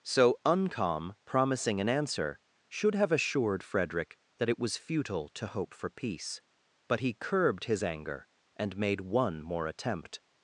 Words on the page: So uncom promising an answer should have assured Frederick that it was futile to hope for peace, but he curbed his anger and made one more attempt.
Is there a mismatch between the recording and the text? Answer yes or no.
no